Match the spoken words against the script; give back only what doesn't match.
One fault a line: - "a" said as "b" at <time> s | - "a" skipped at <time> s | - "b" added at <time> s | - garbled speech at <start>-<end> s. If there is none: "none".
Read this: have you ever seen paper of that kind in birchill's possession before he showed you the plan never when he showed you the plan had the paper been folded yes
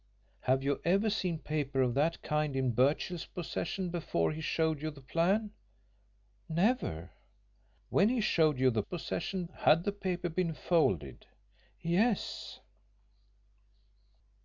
- "plan" said as "possession" at 8.8 s